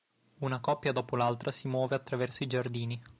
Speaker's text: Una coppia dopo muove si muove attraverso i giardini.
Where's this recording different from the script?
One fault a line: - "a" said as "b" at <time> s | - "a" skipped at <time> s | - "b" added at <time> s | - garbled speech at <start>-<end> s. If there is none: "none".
- "muove" said as "l'altra" at 1.1 s